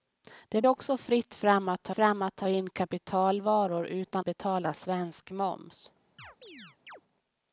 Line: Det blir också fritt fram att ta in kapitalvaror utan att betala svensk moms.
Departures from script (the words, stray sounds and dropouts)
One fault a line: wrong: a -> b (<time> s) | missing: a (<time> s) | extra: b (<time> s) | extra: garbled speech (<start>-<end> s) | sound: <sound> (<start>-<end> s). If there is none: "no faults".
missing: blir (0.6 s)
extra: fram att ta (1.9 s)
missing: att (4.3 s)
sound: chirp (6.2-7.0 s)